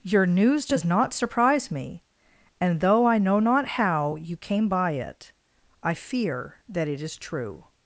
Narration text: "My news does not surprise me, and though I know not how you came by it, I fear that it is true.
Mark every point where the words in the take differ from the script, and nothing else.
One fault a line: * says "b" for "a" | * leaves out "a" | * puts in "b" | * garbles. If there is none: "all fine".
* says "Your" for "My"